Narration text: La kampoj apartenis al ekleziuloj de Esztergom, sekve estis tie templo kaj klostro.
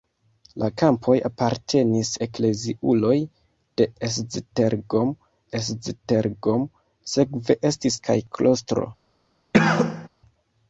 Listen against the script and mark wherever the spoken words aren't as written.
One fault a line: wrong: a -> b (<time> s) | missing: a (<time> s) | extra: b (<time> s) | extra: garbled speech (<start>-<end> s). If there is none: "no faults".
missing: al (2.1 s)
extra: Esztergom (5.6 s)
missing: tie templo (8.0 s)